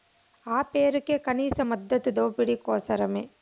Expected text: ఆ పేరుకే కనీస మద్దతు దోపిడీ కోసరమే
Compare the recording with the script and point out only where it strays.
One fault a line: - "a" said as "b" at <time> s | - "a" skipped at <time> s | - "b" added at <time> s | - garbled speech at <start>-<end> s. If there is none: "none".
none